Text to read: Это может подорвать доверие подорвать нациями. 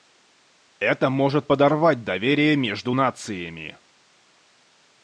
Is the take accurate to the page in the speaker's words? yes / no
no